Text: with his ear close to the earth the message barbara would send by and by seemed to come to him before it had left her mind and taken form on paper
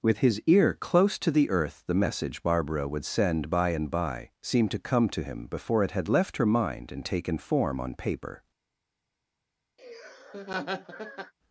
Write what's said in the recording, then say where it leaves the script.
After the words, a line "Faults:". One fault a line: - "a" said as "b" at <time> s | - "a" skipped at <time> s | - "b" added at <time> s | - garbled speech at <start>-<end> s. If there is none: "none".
with his ear close to the earth the message barbara would send by and by seemed to come to him before it had left her mind and taken form on paper
Faults:
none